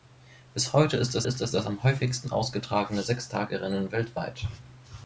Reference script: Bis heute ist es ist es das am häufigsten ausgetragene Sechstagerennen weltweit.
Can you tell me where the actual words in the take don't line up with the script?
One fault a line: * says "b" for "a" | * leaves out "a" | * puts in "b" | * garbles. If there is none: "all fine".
all fine